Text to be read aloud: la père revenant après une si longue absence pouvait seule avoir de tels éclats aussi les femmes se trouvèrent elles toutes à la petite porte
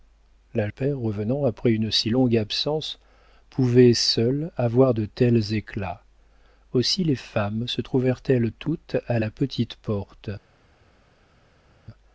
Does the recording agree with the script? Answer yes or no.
yes